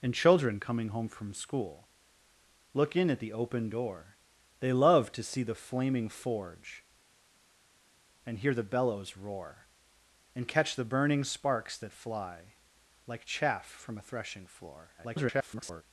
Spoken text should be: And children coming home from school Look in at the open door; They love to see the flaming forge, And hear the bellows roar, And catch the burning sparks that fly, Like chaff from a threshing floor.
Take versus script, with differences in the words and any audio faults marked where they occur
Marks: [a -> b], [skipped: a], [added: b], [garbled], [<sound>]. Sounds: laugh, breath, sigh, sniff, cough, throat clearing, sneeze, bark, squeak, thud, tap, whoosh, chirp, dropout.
And children coming home from school Look in at the open door; They love to see the flaming forge, And hear the bellows roar, And catch the burning sparks that fly, Like chaff from a threshing floor. [garbled]